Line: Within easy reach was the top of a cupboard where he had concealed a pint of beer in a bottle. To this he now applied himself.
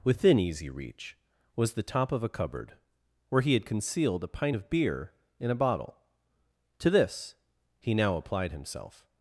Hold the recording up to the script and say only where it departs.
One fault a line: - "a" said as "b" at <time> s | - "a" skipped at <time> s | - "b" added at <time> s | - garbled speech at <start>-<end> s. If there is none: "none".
none